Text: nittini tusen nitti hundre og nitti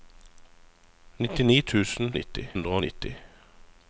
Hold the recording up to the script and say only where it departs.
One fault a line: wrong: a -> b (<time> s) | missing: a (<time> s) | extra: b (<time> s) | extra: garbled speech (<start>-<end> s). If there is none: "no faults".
no faults